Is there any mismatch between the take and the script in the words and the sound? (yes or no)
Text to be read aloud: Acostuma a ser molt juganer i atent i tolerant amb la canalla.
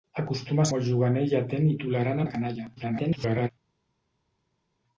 yes